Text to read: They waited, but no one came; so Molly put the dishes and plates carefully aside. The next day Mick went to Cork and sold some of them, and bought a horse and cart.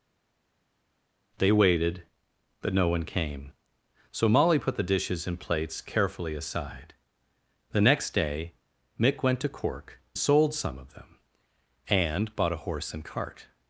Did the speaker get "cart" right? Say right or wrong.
right